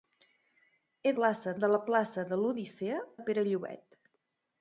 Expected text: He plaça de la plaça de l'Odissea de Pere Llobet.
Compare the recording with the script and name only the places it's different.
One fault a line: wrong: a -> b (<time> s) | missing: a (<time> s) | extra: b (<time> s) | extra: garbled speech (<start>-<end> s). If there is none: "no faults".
no faults